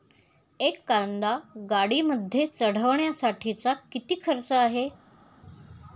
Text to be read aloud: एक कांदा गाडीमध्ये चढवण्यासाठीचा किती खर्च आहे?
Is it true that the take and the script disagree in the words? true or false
false